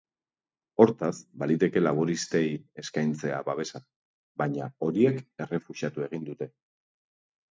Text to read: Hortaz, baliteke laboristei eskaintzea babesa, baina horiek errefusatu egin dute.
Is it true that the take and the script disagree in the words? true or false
false